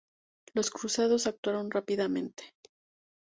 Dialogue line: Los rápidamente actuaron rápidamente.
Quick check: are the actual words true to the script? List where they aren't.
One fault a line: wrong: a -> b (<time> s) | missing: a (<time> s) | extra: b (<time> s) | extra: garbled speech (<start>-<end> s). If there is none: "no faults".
wrong: rápidamente -> cruzados (0.7 s)